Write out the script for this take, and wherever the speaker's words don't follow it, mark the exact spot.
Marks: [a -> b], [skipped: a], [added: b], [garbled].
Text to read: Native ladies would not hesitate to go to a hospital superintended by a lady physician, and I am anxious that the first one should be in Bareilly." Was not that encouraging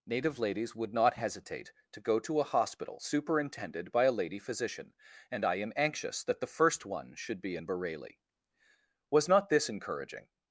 Native ladies would not hesitate to go to a hospital superintended by a lady physician, and I am anxious that the first one should be in Bareilly." Was not [that -> this] encouraging